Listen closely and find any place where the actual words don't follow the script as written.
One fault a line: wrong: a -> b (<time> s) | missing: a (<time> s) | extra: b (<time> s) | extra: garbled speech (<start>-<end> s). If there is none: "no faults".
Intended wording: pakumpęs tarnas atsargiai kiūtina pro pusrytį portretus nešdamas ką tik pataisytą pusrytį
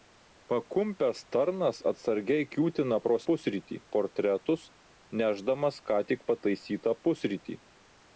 no faults